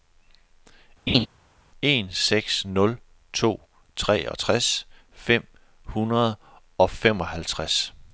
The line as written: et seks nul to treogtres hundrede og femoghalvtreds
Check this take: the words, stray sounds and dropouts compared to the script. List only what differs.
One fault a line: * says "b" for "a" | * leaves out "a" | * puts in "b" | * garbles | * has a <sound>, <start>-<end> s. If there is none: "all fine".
* has a laugh, 1.1-1.3 s
* says "en" for "et"
* puts in "fem"